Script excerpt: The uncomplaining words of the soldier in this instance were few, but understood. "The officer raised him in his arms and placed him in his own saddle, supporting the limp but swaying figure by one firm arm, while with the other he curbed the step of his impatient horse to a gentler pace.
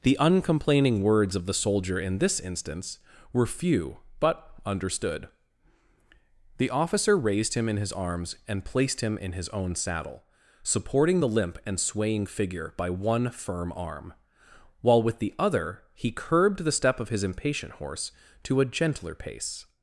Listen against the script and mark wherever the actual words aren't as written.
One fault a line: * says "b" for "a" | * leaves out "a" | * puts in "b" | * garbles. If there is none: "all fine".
* says "and" for "but"